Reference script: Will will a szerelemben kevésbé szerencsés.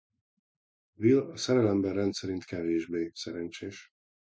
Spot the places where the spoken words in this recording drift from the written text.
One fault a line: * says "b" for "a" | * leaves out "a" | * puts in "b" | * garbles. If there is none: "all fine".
* leaves out "will"
* puts in "rendszerint"